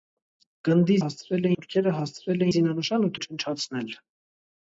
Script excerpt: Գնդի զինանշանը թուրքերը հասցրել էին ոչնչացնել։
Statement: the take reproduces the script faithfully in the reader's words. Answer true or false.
false